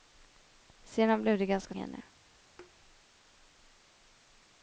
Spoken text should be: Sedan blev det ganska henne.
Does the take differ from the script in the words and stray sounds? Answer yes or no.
yes